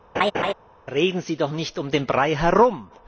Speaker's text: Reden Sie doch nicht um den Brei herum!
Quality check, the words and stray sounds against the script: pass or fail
fail